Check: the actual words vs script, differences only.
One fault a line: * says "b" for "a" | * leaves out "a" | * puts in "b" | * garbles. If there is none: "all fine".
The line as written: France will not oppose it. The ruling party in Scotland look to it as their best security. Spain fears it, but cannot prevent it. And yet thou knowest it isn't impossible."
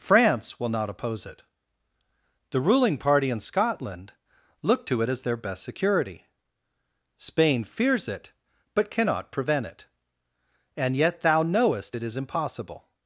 * says "is" for "isn't"